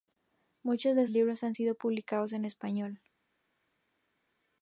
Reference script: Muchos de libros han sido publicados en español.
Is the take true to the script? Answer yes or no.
yes